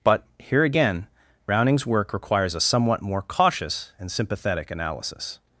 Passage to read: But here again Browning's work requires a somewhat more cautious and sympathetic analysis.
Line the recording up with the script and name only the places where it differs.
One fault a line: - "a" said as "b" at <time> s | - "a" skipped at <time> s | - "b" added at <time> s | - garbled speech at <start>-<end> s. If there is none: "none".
none